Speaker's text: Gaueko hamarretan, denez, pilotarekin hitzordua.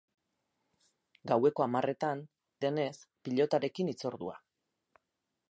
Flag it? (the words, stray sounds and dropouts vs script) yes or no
no